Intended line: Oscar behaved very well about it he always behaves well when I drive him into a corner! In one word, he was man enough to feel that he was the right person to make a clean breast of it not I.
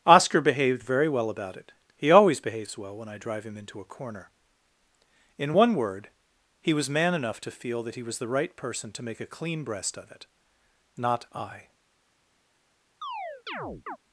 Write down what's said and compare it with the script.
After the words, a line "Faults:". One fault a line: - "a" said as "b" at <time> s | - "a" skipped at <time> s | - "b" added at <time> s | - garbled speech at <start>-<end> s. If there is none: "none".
Oscar behaved very well about it he always behaves well when I drive him into a corner! In one word, he was man enough to feel that he was the right person to make a clean breast of it not I.
Faults:
none